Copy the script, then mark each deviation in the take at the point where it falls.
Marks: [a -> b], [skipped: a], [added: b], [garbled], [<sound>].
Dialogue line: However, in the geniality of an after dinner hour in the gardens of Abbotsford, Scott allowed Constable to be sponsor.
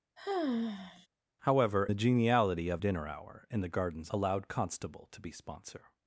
[sigh] However, [skipped: in] the geniality of [skipped: an after] dinner hour in the gardens [skipped: of Abbotsford, Scott] allowed Constable to be sponsor.